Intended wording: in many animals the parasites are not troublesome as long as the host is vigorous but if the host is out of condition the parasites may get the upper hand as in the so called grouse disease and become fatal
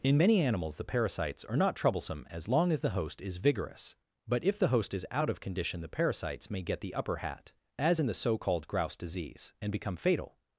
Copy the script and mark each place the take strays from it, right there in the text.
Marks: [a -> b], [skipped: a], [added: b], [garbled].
in many animals the parasites are not troublesome as long as the host is vigorous but if the host is out of condition the parasites may get the upper [hand -> hat] as in the so called grouse disease and become fatal